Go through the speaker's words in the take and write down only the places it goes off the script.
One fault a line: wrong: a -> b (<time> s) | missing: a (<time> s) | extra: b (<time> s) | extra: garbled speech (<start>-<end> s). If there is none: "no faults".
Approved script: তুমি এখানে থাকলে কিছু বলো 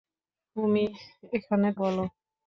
missing: থাকলে কিছু (1.7 s)